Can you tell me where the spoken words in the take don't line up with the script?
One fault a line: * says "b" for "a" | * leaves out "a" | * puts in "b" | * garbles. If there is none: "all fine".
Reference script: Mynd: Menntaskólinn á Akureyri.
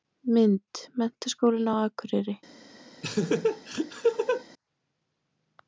all fine